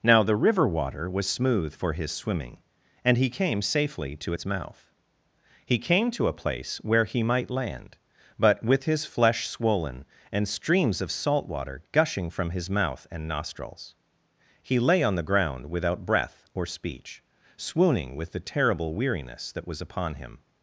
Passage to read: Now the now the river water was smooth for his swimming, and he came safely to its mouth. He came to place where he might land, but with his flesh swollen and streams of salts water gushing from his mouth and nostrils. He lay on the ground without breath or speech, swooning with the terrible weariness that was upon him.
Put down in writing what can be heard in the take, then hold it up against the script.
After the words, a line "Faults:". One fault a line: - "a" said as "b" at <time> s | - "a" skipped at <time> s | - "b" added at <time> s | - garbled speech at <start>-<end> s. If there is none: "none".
Now the river water was smooth for his swimming, and he came safely to its mouth. He came to a place where he might land, but with his flesh swollen and streams of salt water gushing from his mouth and nostrils. He lay on the ground without breath or speech, swooning with the terrible weariness that was upon him.
Faults:
- "now the" skipped at 0.3 s
- "a" added at 6.3 s
- "salts" said as "salt" at 11.1 s